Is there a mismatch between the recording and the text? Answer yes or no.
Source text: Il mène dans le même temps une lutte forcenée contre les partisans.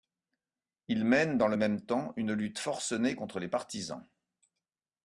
no